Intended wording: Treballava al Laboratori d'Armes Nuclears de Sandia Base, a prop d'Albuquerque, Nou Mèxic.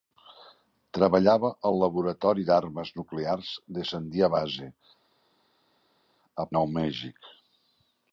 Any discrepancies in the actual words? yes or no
yes